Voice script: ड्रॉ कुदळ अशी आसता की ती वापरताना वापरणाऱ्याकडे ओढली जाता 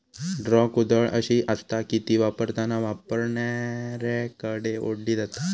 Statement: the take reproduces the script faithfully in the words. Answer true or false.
true